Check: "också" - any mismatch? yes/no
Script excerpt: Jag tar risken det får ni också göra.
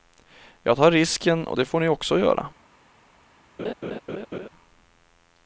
no